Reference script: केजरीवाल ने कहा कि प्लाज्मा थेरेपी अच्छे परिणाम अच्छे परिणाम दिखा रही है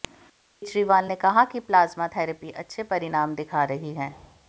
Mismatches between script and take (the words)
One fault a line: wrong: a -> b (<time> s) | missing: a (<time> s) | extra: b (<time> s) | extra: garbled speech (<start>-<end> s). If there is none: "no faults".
missing: अच्छे परिणाम (3.3 s)